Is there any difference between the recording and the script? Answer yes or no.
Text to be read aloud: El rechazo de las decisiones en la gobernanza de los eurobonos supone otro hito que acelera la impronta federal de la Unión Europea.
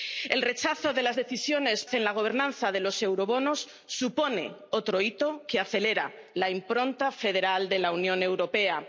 no